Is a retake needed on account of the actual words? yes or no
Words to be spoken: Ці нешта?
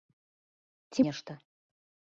no